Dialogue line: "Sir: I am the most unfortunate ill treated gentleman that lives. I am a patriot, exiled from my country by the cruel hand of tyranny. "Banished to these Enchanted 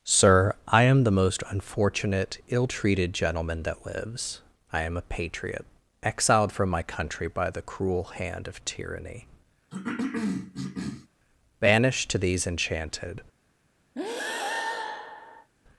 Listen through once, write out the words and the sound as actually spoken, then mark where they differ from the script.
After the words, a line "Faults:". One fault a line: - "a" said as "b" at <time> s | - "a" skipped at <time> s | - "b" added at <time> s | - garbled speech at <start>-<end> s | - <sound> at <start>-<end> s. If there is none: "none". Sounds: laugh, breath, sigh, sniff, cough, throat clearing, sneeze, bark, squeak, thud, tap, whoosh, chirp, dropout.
"Sir: I am the most unfortunate ill treated gentleman that lives. I am a patriot, exiled from my country by the cruel hand of tyranny. "Banished to these Enchanted
Faults:
- cough at 9.7-11.1 s
- breath at 14.0-15.5 s